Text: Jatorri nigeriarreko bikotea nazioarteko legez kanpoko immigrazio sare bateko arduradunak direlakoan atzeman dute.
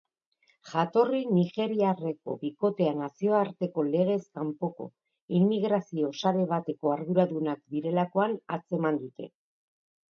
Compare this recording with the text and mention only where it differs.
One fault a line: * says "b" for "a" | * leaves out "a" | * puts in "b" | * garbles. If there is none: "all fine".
all fine